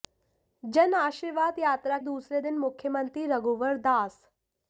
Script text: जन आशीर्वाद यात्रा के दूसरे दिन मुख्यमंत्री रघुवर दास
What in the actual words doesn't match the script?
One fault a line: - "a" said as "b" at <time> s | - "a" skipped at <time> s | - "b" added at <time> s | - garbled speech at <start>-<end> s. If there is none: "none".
- "के" skipped at 2.0 s